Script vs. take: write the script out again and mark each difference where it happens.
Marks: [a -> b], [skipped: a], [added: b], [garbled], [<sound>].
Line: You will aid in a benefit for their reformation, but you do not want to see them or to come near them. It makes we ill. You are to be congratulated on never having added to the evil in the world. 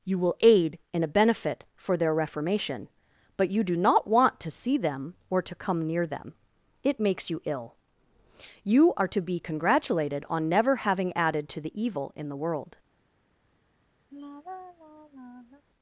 You will aid in a benefit for their reformation, but you do not want to see them or to come near them. It makes [we -> you] ill. You are to be congratulated on never having added to the evil in the world. [sigh]